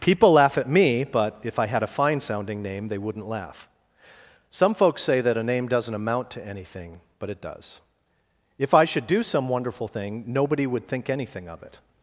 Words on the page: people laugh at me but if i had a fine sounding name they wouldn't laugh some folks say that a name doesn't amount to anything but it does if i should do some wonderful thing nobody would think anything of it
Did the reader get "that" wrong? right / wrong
right